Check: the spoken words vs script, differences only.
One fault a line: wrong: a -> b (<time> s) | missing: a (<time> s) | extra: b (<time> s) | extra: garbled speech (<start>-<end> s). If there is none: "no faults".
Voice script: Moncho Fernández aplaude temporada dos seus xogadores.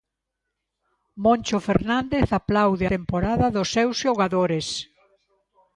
no faults